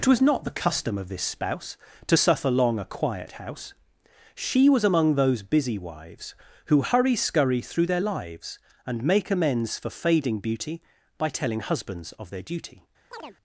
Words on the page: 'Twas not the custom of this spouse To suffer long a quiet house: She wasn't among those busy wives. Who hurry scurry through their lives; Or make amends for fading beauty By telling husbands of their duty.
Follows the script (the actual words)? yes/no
no